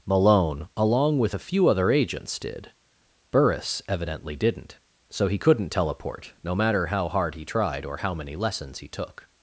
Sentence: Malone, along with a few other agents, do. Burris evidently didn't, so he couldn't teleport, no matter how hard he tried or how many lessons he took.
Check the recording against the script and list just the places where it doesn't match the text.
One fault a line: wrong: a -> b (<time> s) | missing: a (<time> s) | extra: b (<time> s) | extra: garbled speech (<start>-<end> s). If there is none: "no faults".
wrong: do -> did (2.4 s)